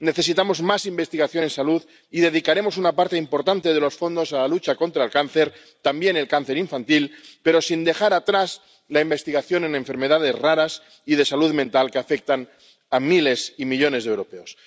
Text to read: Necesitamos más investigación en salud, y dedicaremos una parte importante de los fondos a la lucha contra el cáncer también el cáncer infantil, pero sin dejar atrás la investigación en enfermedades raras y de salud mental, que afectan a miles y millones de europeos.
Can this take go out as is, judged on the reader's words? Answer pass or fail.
pass